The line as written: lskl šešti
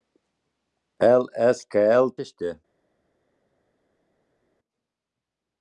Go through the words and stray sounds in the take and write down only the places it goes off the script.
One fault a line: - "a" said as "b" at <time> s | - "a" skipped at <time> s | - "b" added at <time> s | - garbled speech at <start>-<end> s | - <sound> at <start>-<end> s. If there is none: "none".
none